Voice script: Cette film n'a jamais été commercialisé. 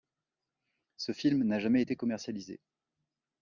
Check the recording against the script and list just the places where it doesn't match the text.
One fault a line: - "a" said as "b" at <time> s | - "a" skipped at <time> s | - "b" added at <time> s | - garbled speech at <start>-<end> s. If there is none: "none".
- "Cette" said as "Ce" at 1.0 s